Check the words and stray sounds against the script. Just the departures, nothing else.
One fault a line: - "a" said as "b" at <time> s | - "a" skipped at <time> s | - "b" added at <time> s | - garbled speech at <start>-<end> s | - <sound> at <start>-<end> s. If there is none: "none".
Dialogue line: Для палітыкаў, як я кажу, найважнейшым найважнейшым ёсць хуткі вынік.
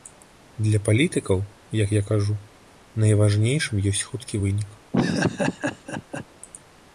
- "найважнейшым" skipped at 3.8 s
- laugh at 4.9-6.3 s